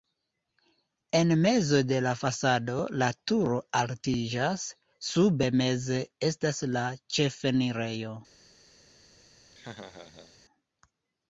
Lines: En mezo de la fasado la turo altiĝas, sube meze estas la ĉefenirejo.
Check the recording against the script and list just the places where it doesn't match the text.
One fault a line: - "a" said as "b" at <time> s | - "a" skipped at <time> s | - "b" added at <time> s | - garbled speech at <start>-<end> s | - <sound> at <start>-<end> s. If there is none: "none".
- laugh at 9.5-10.4 s